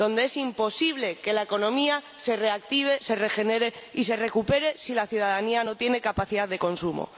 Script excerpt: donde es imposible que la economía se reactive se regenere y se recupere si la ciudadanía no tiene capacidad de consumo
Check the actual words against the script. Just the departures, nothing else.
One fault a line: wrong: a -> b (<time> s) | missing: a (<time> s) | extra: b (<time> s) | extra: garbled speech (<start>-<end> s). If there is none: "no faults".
no faults